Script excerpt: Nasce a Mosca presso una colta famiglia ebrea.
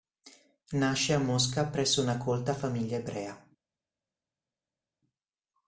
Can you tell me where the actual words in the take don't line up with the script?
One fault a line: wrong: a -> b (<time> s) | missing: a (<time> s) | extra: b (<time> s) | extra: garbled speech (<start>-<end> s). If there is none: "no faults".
no faults